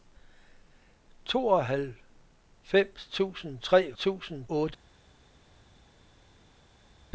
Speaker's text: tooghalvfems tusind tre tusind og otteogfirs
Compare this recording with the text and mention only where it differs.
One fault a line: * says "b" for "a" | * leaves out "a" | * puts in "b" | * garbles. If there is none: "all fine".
all fine